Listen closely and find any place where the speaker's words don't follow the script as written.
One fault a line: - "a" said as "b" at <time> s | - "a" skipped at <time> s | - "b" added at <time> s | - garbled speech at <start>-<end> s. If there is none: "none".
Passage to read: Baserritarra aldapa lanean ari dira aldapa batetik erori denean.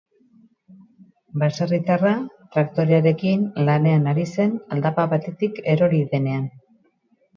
- "aldapa" said as "traktorearekin" at 2.5 s
- "dira" said as "zen" at 4.4 s